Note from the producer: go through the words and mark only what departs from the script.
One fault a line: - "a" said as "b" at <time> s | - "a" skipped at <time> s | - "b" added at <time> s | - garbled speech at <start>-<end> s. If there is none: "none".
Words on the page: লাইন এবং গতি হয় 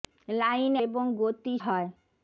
none